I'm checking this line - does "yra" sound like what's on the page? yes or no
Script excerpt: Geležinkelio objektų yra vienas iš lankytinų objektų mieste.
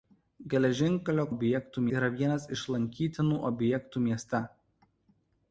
yes